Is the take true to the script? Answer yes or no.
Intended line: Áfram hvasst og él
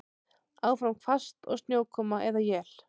no